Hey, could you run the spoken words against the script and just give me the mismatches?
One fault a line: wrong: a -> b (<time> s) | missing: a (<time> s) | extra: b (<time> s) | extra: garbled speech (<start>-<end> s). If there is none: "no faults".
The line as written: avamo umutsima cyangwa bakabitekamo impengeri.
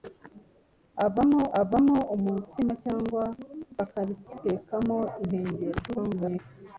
extra: avamo (1.6 s)
extra: garbled speech (5.9-6.4 s)